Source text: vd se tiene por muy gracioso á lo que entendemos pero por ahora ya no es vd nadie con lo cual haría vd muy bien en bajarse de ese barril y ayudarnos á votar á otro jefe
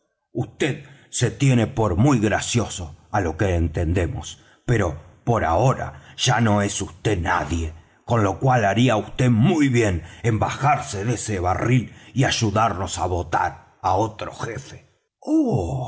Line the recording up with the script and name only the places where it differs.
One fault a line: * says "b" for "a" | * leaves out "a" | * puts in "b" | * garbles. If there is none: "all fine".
all fine